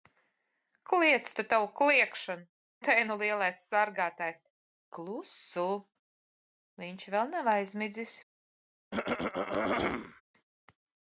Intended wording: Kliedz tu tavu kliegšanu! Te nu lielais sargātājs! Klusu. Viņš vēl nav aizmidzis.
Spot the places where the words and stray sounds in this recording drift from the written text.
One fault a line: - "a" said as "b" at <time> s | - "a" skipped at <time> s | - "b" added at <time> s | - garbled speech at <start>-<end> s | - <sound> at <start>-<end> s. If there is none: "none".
- throat clearing at 8.9-10.2 s